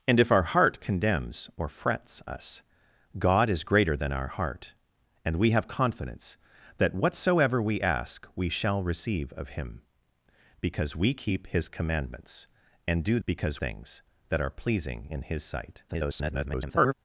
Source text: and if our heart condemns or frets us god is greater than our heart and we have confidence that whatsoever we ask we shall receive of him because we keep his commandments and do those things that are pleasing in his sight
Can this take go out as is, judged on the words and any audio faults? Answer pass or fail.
fail